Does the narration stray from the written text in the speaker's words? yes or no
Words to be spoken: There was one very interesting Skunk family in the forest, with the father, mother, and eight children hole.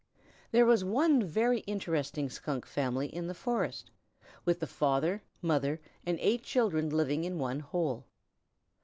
yes